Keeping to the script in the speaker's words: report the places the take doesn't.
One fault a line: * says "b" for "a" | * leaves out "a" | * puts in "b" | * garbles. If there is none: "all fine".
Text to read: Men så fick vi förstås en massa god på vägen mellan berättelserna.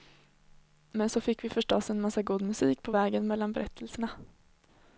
* puts in "musik"